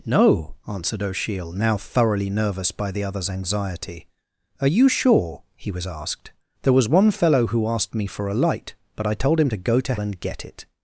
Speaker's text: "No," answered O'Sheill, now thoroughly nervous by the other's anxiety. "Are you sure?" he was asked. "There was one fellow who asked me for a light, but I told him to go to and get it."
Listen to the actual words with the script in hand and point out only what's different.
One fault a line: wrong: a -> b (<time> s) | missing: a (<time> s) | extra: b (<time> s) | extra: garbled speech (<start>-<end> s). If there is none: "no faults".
no faults